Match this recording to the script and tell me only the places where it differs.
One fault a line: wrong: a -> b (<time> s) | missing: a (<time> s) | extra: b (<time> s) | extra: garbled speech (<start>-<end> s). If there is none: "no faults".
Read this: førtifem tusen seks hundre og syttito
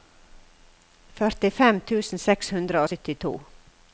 no faults